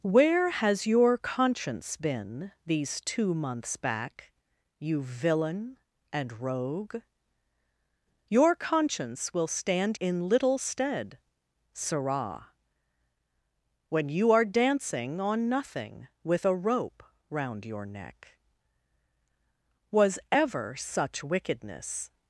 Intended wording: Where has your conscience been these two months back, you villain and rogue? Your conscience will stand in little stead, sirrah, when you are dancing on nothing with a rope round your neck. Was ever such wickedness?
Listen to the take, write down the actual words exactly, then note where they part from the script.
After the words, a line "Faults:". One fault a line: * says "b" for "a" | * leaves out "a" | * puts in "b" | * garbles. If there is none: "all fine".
Where has your conscience been these two months back, you villain and rogue? Your conscience will stand in little stead, sirrah, when you are dancing on nothing with a rope round your neck. Was ever such wickedness?
Faults:
all fine